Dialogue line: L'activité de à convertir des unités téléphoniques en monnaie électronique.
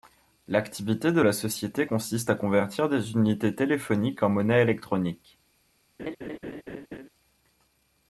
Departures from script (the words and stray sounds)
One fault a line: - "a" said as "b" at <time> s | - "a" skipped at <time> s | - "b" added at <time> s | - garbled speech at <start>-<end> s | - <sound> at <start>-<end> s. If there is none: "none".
- "la société consiste" added at 1.2 s
- laugh at 6.0-7.1 s